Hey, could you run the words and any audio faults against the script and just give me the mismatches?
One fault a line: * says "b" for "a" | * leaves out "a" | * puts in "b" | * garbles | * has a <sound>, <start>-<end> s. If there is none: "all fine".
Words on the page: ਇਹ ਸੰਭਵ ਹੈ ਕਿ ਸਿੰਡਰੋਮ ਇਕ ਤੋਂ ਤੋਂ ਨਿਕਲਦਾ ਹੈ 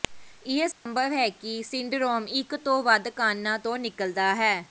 * has a dropout, 0.7-0.9 s
* puts in "ਵੱਧ ਕਾਰਣਾਂ"